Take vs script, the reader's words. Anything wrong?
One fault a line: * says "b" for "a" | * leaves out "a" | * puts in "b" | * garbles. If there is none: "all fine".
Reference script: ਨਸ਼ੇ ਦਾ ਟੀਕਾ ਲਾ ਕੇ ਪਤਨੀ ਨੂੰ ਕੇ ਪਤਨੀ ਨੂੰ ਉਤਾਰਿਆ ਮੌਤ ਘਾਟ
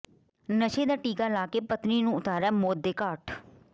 * leaves out "ਕੇ ਪਤਨੀ ਨੂੰ"
* puts in "ਦੇ"